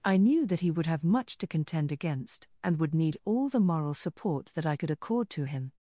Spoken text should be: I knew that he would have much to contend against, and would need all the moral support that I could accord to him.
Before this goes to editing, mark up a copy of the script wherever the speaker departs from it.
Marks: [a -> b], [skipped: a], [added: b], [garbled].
I knew that he would have much to contend against, and would need all the moral support that I could accord to him.